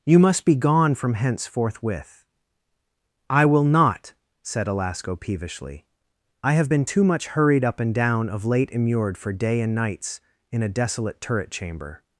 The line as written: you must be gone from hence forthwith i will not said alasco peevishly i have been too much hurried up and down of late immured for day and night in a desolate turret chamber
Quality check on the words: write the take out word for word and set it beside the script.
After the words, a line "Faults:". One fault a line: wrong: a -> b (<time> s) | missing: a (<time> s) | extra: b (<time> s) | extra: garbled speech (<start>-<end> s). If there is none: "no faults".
you must be gone from hence forthwith i will not said alasco peevishly i have been too much hurried up and down of late immured for day and nights in a desolate turret chamber
Faults:
wrong: night -> nights (9.7 s)